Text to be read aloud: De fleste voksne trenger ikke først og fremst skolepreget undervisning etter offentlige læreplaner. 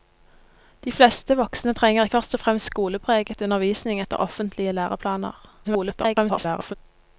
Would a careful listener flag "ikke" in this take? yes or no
yes